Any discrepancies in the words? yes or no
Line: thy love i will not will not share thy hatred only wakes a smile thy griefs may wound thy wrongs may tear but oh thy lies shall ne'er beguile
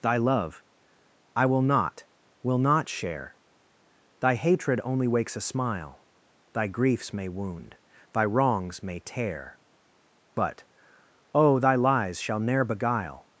no